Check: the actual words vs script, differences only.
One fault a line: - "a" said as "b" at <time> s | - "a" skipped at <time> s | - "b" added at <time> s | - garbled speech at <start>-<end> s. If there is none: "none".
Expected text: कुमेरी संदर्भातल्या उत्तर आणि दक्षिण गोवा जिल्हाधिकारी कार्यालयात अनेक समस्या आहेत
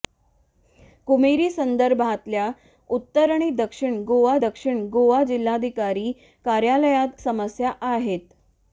- "दक्षिण गोवा" added at 4.4 s
- "अनेक" skipped at 7.2 s